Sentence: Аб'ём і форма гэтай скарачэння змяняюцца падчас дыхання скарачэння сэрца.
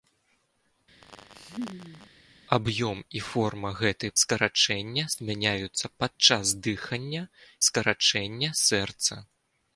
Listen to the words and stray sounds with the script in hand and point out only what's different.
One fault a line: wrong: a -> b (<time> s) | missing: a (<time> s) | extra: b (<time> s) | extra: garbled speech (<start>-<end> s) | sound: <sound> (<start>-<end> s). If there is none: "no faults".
sound: laugh (1.0-2.1 s)